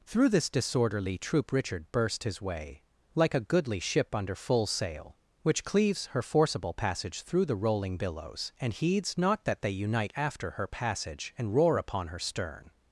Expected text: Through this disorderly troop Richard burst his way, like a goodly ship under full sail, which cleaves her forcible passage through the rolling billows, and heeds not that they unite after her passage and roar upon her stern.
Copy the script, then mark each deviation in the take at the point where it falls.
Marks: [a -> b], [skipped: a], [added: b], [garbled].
Through this disorderly troop Richard burst his way, like a goodly ship under full sail, which cleaves her forcible passage through the rolling billows, and heeds not that they unite after her passage and roar upon her stern.